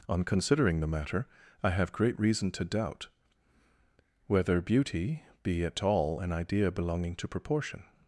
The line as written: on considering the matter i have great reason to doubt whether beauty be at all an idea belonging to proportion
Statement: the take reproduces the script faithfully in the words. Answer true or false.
true